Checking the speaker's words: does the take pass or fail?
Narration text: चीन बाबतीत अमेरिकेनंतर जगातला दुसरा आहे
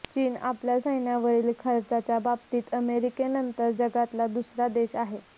fail